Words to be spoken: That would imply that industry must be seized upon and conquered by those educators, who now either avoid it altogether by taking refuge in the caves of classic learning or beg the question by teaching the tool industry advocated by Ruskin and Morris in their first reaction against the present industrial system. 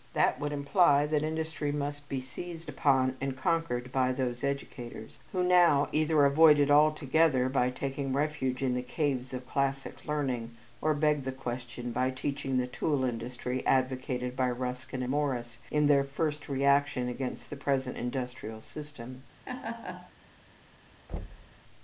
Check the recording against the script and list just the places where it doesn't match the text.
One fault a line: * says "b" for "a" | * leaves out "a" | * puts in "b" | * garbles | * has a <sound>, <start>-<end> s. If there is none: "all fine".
* leaves out "and"
* has a laugh, 19.5-20.1 s
* has a thud, 21.1-21.6 s